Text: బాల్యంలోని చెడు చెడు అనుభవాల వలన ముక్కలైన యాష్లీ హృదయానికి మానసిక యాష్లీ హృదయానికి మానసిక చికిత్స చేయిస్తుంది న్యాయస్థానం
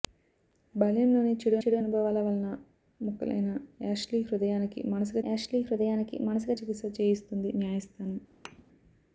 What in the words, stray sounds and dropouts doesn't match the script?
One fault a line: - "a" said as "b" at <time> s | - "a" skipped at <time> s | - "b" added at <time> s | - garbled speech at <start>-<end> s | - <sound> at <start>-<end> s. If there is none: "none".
- thud at 8.4-8.6 s